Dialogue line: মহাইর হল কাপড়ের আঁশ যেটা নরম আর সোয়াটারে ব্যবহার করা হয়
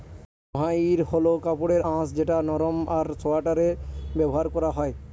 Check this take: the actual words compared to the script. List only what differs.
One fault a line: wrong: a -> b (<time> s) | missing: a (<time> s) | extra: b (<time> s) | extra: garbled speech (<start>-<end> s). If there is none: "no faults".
no faults